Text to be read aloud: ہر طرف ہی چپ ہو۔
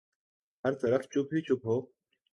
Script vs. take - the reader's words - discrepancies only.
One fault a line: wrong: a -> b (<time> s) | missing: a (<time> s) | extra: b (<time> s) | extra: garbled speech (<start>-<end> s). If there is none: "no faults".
extra: چپ (1.0 s)